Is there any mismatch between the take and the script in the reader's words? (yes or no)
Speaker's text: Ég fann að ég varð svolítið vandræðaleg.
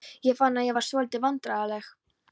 no